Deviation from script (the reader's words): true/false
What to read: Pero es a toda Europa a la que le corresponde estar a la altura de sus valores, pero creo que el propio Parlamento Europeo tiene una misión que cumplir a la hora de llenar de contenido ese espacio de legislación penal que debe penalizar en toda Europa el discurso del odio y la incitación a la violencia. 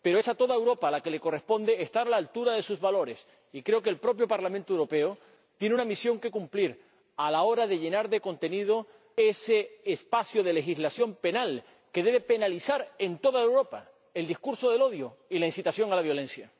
true